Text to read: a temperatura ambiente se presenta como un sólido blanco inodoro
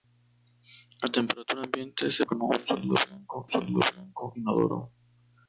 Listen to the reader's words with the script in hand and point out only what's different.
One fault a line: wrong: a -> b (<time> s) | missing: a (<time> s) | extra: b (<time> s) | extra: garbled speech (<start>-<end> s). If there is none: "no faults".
missing: presenta (2.2 s)
extra: sólido blanco (3.5 s)